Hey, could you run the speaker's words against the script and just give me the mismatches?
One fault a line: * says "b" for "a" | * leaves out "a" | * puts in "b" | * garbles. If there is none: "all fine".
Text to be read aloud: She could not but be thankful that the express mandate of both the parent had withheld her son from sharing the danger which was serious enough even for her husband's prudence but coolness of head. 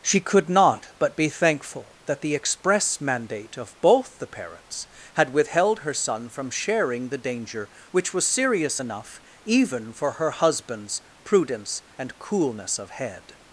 * says "parents" for "parent"
* says "and" for "but"